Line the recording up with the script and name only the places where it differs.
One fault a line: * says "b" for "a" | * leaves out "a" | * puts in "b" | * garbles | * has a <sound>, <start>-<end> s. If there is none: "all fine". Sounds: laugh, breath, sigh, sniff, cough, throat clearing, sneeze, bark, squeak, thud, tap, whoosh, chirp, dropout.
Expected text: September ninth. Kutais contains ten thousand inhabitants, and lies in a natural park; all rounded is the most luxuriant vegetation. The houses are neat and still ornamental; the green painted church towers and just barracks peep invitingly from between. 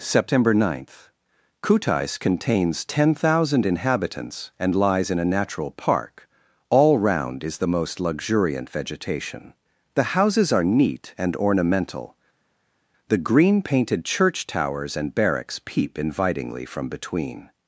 * says "round" for "rounded"
* leaves out "still"
* leaves out "just"